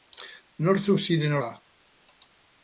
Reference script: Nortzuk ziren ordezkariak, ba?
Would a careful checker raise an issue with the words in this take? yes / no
yes